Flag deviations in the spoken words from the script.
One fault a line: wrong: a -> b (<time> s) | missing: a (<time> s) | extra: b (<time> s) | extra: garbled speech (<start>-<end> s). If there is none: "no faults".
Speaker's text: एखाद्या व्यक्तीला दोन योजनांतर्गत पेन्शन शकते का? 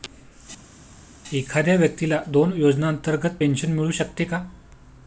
extra: मिळू (3.7 s)